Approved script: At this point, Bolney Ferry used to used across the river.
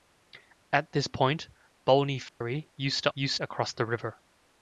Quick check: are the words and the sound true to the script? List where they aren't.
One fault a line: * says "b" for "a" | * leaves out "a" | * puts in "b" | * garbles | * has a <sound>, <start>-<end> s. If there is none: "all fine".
* has a dropout, 2.3-2.4 s